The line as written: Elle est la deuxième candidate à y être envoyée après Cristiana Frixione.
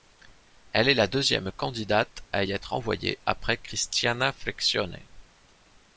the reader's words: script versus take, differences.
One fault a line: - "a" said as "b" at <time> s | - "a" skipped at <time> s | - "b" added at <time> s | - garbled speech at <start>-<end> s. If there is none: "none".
none